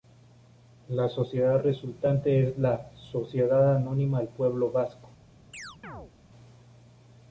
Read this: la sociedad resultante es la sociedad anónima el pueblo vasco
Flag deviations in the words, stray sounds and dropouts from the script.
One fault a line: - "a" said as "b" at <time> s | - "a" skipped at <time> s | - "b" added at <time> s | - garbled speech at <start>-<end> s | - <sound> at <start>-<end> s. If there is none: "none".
- chirp at 5.5-6.1 s